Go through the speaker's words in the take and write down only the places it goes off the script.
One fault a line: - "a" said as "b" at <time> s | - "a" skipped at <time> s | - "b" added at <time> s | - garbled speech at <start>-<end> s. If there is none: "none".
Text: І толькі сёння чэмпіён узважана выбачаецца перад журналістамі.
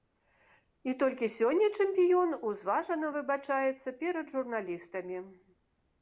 none